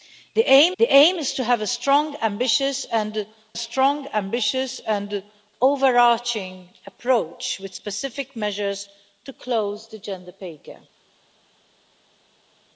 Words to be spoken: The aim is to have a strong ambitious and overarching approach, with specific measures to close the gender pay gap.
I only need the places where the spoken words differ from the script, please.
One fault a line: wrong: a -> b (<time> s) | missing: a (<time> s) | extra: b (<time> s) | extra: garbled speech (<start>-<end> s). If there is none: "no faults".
extra: the aim (0.8 s)
extra: strong ambitious and (3.6 s)